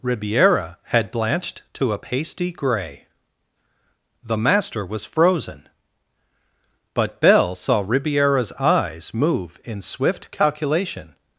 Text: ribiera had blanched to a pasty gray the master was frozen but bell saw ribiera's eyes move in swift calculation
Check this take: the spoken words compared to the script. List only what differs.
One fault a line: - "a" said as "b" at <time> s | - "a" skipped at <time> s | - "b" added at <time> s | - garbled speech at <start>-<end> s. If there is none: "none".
none